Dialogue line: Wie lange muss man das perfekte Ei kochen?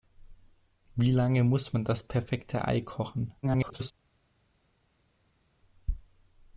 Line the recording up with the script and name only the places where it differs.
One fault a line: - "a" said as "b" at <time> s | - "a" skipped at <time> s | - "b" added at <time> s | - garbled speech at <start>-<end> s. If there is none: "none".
- garbled speech at 3.4-3.9 s